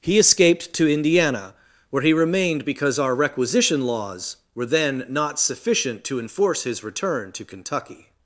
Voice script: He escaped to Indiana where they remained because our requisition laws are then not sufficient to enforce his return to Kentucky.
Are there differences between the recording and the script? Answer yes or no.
yes